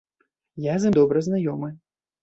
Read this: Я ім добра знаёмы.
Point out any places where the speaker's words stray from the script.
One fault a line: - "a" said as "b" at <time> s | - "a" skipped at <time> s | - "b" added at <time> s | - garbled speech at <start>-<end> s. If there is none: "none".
- "з" added at 0.8 s